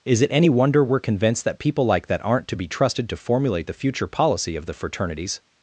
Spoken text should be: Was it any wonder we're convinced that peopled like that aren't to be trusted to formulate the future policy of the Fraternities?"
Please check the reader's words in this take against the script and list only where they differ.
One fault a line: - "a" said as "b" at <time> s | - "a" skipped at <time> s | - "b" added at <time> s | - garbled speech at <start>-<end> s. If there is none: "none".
- "Was" said as "Is" at 0.0 s
- "peopled" said as "people" at 1.6 s